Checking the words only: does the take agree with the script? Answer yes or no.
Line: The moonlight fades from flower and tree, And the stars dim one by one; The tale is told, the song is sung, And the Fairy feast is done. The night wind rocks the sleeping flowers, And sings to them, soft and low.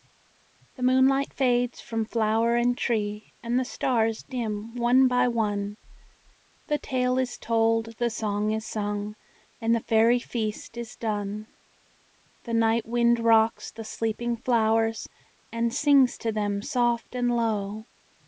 yes